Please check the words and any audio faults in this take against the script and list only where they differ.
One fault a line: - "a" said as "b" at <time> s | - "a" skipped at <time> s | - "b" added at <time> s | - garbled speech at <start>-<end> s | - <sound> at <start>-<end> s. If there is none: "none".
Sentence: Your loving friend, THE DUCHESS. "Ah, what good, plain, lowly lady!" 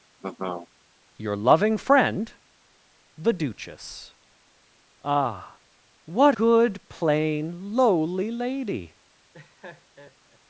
- laugh at 0.2-0.7 s
- laugh at 9.3-10.4 s